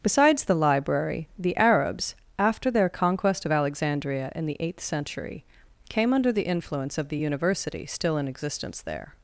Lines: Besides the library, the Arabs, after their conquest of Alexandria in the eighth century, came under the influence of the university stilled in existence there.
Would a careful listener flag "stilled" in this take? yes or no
yes